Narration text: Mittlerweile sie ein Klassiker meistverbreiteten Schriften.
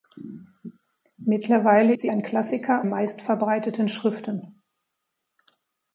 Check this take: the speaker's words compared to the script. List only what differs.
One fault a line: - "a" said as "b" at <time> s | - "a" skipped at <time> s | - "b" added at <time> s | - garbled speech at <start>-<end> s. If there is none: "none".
none